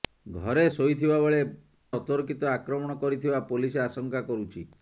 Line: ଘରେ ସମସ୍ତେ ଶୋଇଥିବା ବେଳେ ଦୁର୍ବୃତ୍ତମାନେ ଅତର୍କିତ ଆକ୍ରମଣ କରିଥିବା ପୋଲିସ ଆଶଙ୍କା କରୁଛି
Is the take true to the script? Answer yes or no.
no